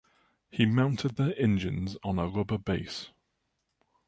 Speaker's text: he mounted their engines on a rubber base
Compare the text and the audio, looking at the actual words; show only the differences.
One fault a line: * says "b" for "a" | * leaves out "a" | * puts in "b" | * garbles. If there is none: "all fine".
all fine